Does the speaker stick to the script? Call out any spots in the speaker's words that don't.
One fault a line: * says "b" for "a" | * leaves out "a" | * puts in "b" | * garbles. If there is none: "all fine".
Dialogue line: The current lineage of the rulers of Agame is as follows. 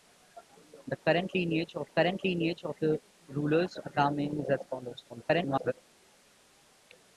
* puts in "current lineage of"
* leaves out "of"
* garbles